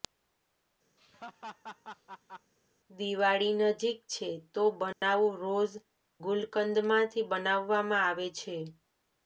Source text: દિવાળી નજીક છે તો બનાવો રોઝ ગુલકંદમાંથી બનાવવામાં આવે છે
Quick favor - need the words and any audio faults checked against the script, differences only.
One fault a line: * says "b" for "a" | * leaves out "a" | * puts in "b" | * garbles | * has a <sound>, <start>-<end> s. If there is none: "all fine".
* has a laugh, 1.0-2.5 s
* has a dropout, 4.9-5.0 s